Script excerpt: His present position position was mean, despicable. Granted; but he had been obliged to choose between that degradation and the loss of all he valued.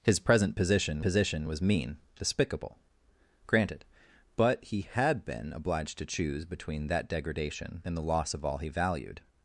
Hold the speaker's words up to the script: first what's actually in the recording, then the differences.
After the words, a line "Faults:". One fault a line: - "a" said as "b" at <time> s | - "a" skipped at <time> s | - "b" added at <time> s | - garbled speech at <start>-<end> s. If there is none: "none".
His present position position was mean, despicable. Granted; but he had been obliged to choose between that degradation and the loss of all he valued.
Faults:
none